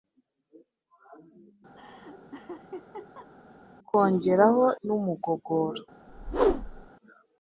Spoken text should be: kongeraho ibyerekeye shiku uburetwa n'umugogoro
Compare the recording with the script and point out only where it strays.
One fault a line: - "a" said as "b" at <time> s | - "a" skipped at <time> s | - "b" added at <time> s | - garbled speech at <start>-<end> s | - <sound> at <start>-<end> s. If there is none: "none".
- laugh at 1.8-3.3 s
- "ibyerekeye shiku uburetwa" skipped at 4.6 s
- whoosh at 6.1-6.9 s